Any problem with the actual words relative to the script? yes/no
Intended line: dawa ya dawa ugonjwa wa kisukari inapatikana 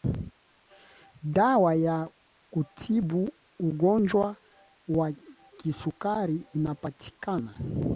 yes